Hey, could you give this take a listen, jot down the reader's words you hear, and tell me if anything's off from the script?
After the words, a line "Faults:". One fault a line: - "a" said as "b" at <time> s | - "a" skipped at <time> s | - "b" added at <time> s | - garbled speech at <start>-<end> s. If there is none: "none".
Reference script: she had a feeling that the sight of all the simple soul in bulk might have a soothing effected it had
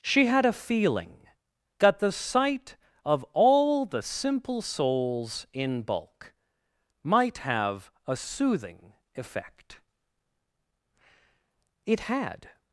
she had a feeling that the sight of all the simple souls in bulk might have a soothing effect it had
Faults:
- "soul" said as "souls" at 4.6 s
- "effected" said as "effect" at 9.1 s